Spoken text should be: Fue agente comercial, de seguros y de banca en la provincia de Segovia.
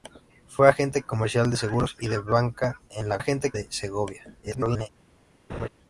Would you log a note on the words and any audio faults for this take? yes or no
yes